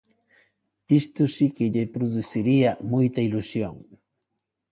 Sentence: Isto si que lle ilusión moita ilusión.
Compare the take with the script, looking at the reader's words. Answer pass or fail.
fail